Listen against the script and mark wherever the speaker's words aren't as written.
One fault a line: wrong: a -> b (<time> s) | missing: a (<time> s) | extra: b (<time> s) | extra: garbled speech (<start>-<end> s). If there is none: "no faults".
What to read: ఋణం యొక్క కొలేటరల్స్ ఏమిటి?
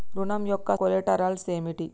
no faults